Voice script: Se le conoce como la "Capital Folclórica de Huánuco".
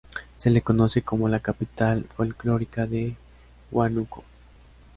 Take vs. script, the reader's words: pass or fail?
pass